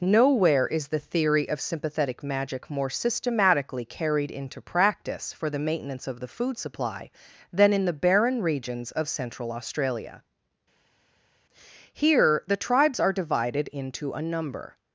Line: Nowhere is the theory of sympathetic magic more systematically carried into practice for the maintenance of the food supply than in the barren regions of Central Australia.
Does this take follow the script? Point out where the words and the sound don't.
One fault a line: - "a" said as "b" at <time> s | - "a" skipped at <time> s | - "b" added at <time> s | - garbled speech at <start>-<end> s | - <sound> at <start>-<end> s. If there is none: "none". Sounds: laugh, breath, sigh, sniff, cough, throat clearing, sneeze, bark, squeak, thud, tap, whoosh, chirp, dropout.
- "Here the tribes are divided into a number" added at 11.9 s